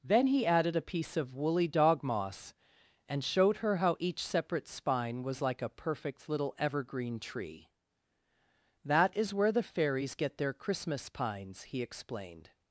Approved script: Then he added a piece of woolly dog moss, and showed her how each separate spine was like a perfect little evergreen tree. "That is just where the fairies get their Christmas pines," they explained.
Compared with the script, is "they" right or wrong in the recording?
wrong